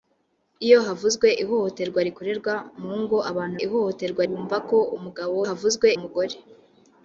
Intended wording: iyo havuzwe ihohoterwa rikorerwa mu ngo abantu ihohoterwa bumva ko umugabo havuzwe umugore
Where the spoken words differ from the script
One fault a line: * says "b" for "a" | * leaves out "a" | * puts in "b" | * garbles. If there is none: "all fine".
all fine